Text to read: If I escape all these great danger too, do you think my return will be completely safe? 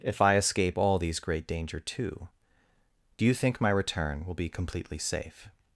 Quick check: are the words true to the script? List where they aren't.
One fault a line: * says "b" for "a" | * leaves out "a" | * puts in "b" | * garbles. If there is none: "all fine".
all fine